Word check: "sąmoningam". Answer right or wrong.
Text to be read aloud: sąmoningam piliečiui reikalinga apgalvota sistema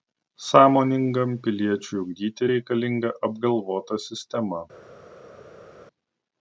right